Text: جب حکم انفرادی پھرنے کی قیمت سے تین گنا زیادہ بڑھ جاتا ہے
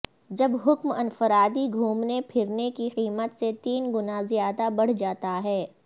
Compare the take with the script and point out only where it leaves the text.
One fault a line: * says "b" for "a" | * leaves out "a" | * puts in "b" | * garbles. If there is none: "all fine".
* puts in "گھومنے"